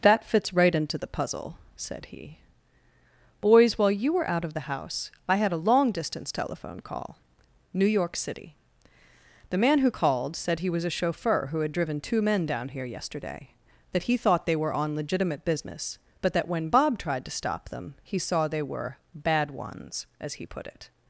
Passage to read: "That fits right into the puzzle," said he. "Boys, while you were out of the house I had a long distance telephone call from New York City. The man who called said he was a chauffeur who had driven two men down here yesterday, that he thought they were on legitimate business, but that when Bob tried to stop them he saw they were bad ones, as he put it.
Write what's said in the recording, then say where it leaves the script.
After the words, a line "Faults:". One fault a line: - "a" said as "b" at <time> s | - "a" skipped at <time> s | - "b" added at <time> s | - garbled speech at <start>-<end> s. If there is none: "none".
"That fits right into the puzzle," said he. "Boys, while you were out of the house I had a long distance telephone call New York City. The man who called said he was a chauffeur who had driven two men down here yesterday, that he thought they were on legitimate business, but that when Bob tried to stop them he saw they were bad ones, as he put it.
Faults:
- "from" skipped at 7.2 s